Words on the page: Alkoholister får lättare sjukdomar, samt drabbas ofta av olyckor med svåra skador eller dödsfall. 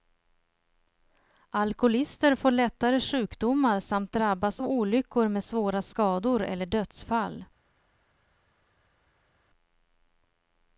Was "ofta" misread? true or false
true